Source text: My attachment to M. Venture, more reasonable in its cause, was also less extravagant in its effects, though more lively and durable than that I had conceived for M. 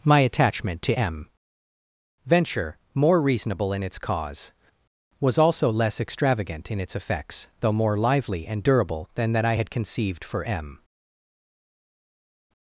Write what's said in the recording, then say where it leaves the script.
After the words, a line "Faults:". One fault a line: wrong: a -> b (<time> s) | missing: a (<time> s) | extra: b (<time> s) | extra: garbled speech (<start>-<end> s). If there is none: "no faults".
My attachment to M. Venture, more reasonable in its cause, was also less extravagant in its effects, though more lively and durable than that I had conceived for M.
Faults:
no faults